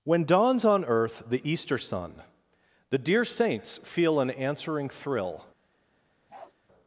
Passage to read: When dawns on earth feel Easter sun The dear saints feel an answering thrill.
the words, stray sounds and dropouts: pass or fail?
fail